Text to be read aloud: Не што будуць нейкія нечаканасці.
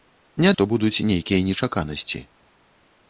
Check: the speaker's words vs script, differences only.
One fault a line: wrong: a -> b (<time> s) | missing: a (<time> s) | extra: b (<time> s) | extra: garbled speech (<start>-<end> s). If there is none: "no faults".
no faults